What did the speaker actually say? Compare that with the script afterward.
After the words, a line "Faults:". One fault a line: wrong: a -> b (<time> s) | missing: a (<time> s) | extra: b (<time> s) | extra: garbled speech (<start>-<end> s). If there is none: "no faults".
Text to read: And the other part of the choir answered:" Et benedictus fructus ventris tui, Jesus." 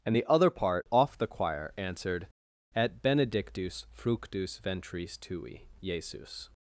And the other part off the choir answered:" Et benedictus fructus ventris tui, Jesus."
Faults:
wrong: of -> off (0.9 s)